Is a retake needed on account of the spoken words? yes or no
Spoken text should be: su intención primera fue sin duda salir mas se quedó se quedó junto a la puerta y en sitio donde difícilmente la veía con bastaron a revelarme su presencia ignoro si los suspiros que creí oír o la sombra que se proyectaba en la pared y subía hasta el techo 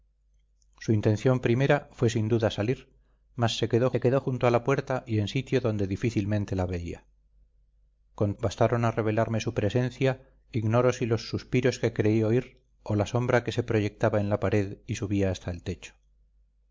no